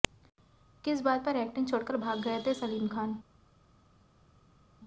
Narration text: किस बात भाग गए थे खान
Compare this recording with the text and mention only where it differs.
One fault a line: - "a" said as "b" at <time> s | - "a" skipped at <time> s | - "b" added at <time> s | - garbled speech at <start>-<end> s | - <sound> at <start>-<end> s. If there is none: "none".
- "पर एक्टिंग छोड़कर" added at 1.2 s
- "सलीम" added at 2.5 s